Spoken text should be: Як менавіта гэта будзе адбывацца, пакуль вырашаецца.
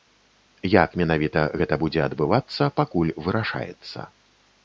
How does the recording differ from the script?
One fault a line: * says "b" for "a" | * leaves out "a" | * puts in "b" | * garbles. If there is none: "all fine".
all fine